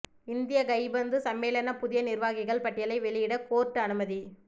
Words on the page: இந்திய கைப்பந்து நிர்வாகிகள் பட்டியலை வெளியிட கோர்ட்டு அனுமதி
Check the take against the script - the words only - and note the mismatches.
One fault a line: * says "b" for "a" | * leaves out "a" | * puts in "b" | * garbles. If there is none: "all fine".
* puts in "சம்மேளன புதிய"